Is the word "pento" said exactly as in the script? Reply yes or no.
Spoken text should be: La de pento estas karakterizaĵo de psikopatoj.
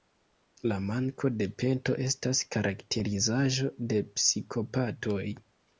yes